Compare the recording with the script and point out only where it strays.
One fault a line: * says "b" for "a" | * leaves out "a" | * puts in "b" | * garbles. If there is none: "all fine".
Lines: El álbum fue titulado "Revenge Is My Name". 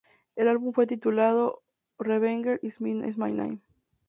all fine